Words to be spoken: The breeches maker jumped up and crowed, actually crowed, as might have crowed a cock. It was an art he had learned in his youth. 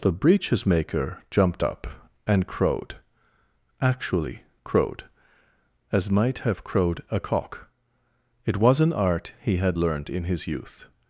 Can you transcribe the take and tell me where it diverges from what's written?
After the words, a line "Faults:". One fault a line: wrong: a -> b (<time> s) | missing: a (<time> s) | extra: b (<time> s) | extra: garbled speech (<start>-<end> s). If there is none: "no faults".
The breeches maker jumped up and crowed, actually crowed, as might have crowed a cock. It was an art he had learned in his youth.
Faults:
no faults